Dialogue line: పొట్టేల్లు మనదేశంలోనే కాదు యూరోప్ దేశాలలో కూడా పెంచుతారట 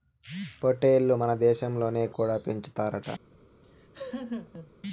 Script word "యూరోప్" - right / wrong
wrong